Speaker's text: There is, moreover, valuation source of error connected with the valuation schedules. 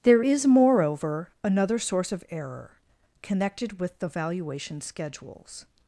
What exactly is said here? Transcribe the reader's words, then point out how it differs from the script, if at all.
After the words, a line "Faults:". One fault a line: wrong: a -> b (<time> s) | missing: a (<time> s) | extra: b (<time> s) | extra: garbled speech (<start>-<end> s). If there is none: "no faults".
There is, moreover, another source of error connected with the valuation schedules.
Faults:
wrong: valuation -> another (1.4 s)